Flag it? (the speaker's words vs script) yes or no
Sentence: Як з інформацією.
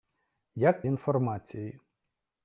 no